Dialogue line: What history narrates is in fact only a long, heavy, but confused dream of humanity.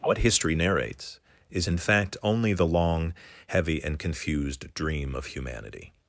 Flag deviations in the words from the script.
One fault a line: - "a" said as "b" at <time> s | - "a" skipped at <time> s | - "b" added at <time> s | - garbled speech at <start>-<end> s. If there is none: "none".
- "a" said as "the" at 2.5 s
- "but" said as "and" at 3.8 s